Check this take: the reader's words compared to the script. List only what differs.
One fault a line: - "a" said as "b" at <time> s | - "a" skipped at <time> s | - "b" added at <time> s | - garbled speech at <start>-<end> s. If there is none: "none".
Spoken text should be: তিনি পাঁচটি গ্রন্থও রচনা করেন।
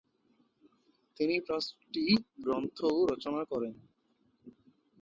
none